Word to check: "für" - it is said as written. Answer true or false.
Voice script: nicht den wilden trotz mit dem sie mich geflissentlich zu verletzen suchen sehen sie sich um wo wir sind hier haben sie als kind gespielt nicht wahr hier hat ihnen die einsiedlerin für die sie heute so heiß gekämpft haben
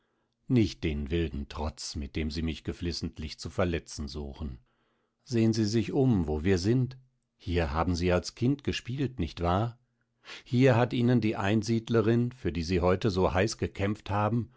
true